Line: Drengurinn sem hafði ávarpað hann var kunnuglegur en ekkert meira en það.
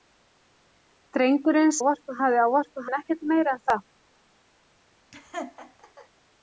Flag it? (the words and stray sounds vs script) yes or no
yes